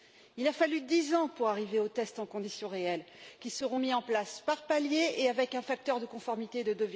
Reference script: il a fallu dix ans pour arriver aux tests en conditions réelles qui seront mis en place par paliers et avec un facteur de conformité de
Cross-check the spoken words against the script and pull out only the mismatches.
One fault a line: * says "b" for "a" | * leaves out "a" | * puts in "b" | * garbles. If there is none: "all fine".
all fine